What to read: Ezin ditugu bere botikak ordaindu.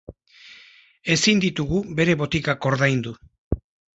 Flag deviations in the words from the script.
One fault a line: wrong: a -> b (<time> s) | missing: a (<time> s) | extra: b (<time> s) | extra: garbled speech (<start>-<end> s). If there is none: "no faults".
no faults